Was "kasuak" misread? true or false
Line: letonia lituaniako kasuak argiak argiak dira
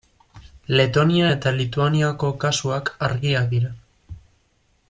false